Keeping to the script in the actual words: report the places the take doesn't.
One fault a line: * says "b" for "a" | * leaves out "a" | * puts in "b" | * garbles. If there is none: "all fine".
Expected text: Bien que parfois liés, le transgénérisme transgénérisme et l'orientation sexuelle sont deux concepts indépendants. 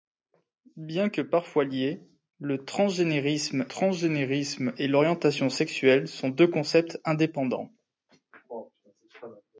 all fine